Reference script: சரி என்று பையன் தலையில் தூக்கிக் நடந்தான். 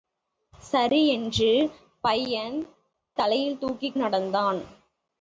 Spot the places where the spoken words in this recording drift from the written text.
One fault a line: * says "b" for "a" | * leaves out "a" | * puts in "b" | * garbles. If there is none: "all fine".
all fine